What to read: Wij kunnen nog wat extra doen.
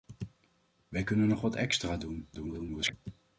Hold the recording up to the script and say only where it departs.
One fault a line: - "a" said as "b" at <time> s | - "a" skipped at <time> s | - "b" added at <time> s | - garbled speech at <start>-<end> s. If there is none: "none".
- garbled speech at 2.3-2.9 s